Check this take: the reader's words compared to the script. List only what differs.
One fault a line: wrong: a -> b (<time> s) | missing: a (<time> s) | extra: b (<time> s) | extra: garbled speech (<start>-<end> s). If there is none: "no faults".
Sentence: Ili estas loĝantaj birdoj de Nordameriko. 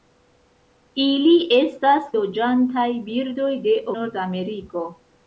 no faults